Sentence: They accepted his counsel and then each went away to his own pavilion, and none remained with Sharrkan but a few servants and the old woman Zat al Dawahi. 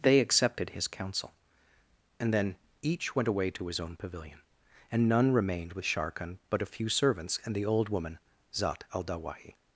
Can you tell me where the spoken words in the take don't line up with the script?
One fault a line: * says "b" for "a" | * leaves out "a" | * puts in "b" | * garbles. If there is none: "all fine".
all fine